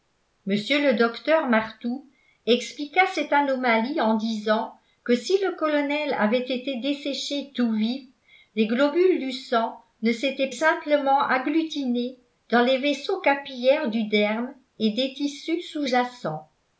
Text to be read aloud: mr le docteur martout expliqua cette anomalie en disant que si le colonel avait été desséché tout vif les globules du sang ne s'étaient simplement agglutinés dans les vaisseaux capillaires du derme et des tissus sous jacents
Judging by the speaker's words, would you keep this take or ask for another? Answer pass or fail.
pass